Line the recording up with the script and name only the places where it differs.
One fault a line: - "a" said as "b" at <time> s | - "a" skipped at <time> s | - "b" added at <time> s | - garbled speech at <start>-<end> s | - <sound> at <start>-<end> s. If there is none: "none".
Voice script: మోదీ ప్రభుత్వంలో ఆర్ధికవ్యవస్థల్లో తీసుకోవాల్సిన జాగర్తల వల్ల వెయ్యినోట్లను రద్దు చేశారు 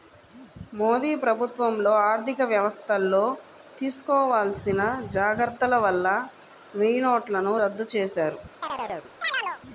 - chirp at 8.6-9.6 s